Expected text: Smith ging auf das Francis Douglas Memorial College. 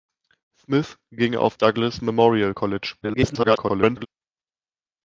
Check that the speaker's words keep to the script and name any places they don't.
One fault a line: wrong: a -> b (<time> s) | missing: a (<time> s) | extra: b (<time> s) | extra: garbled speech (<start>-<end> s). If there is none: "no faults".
missing: das Francis (1.5 s)
extra: garbled speech (3.0-4.1 s)